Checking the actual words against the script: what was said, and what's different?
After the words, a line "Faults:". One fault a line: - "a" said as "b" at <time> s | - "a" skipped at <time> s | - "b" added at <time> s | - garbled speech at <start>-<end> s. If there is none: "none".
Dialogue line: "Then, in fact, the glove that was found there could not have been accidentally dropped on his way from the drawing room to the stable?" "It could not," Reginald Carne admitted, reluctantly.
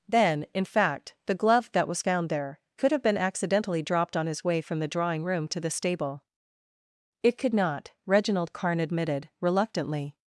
"Then, in fact, the glove that was found there could have been accidentally dropped on his way from the drawing room to the stable?" "It could not," Reginald Carne admitted, reluctantly.
Faults:
- "not" skipped at 2.9 s